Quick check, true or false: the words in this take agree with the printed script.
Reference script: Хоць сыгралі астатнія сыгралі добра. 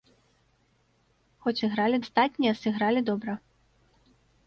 true